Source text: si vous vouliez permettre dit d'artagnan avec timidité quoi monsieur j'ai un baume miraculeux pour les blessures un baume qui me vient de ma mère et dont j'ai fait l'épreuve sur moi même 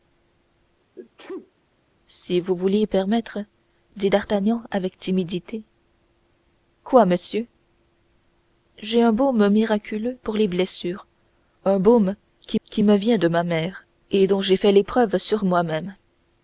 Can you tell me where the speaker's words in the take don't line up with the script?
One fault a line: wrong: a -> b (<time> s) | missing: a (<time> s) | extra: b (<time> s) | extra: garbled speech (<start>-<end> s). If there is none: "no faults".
extra: qui (12.6 s)